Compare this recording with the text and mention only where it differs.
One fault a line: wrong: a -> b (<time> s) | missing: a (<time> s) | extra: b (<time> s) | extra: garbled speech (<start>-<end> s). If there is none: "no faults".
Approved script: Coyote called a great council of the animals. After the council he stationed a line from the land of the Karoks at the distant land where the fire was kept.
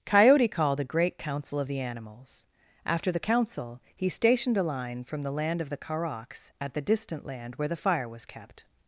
no faults